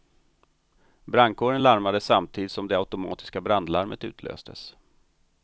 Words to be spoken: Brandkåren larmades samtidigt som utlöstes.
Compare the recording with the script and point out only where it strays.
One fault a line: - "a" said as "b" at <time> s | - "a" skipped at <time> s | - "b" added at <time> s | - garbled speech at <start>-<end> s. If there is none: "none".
- "det automatiska brandlarmet" added at 2.7 s